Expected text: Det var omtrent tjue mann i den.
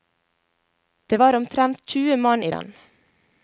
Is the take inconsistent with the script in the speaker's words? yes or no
no